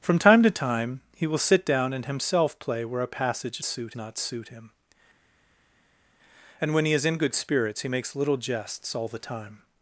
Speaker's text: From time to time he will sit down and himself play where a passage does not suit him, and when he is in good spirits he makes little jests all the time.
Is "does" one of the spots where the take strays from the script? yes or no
yes